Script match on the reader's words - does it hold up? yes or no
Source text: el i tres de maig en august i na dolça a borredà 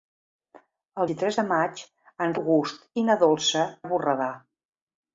yes